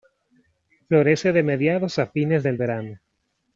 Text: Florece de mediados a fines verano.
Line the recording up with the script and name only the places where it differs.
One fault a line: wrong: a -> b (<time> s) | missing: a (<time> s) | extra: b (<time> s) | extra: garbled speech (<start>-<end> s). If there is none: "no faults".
extra: del (2.4 s)